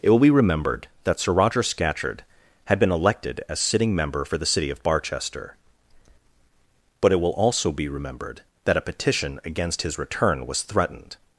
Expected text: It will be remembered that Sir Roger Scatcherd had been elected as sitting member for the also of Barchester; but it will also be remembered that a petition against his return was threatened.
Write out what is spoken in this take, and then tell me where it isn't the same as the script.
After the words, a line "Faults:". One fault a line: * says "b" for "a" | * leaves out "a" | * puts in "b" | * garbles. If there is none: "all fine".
It will be remembered that Sir Roger Scatcherd had been elected as sitting member for the city of Barchester; but it will also be remembered that a petition against his return was threatened.
Faults:
* says "city" for "also"